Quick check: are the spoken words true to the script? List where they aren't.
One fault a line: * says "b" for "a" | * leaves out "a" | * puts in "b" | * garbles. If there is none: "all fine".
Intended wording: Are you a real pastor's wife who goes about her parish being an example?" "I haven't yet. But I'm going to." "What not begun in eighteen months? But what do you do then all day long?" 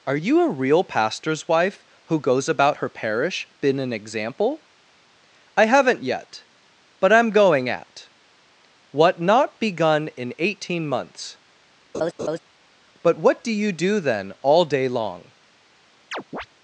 * says "been" for "being"
* says "at" for "to"